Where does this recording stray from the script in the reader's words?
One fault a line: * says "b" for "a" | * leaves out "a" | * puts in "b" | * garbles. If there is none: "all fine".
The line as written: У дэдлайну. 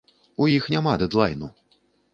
* puts in "іх няма"